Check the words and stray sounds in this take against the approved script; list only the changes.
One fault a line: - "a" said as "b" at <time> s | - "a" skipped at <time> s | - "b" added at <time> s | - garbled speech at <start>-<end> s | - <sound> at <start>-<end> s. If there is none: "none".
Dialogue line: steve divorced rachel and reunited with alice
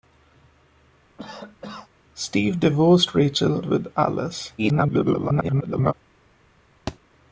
- cough at 1.2-1.9 s
- "and reunited" skipped at 3.6 s
- garbled speech at 4.6-5.9 s
- thud at 6.9-7.0 s